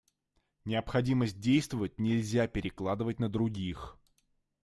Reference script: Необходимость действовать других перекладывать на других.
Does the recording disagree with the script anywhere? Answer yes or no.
yes